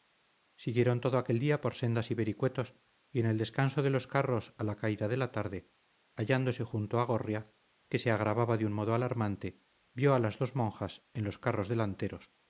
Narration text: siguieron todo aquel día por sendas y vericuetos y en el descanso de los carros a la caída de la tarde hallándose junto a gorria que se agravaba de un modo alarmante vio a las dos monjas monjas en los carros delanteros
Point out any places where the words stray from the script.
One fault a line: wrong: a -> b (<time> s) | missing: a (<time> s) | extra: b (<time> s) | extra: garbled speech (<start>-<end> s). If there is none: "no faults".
missing: monjas (11.0 s)